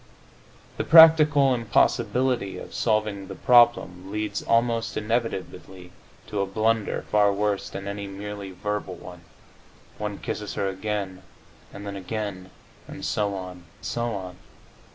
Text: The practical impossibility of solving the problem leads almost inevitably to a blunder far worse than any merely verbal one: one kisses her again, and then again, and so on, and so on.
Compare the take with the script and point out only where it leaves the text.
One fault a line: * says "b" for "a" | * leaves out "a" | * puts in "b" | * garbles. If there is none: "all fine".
* leaves out "and"